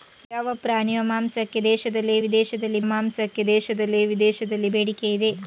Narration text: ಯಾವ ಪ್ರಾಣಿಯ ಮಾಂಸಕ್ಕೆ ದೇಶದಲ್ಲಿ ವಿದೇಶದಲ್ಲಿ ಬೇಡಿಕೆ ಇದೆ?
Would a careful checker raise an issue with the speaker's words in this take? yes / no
yes